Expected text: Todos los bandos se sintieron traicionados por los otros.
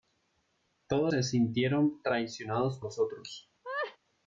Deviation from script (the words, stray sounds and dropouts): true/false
true